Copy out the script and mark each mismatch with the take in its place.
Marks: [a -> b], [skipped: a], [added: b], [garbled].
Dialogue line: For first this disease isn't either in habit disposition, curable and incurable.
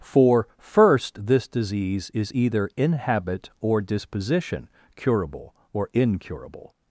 For first this disease [isn't -> is] either in habit [added: or] disposition, curable [and -> or] incurable.